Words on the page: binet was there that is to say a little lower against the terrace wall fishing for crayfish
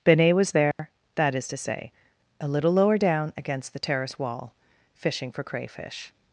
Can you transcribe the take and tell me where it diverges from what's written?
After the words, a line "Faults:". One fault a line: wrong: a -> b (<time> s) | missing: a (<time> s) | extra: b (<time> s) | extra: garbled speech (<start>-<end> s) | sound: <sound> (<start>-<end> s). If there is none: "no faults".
binet was there that is to say a little lower down against the terrace wall fishing for crayfish
Faults:
sound: dropout (0.7-0.8 s)
extra: down (3.0 s)